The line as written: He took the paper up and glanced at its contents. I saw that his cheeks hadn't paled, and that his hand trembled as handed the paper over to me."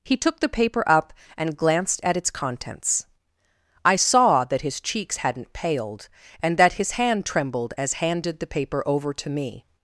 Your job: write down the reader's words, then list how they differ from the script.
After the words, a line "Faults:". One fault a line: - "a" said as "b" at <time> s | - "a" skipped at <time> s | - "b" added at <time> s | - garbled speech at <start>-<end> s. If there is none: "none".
He took the paper up and glanced at its contents. I saw that his cheeks hadn't paled, and that his hand trembled as handed the paper over to me."
Faults:
none